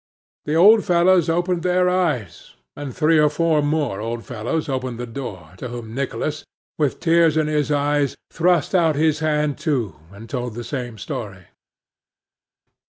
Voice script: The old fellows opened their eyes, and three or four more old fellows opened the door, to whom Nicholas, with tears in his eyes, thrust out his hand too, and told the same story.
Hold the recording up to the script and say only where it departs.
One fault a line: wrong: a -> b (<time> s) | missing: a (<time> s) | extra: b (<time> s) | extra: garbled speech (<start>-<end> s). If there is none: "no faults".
no faults